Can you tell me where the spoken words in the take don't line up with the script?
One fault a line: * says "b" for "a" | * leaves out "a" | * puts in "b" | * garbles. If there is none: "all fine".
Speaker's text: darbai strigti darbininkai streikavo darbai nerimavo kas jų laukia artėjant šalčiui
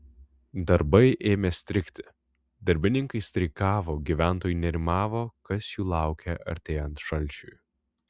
* puts in "ėmė"
* says "gyventojai" for "darbai"